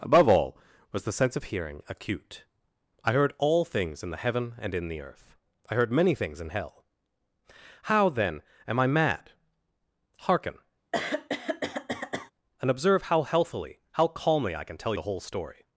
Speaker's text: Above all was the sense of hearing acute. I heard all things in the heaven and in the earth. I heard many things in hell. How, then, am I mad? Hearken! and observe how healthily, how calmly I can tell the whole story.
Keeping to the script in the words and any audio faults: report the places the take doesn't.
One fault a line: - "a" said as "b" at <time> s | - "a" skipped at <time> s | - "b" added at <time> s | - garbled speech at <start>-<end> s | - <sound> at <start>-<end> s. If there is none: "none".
- throat clearing at 10.9-12.3 s